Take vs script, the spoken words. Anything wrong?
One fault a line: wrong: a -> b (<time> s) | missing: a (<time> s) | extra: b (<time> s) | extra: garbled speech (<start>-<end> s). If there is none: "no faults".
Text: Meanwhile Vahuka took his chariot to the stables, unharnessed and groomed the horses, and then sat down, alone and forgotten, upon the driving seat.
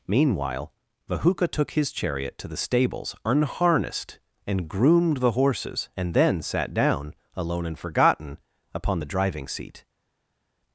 no faults